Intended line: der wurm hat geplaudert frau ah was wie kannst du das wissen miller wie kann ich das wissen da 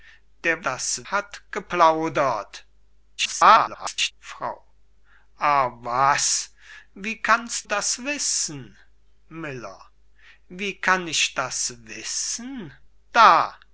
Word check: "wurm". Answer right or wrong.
wrong